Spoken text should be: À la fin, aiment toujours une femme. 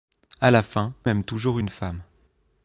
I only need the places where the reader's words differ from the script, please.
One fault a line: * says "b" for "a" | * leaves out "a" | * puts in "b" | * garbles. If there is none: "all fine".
all fine